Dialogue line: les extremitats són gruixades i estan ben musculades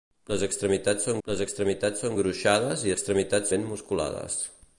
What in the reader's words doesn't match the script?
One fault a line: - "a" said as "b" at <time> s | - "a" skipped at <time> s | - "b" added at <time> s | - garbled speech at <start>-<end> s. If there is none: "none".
- "les extremitats són" added at 1.3 s
- "estan" said as "extremitats" at 2.9 s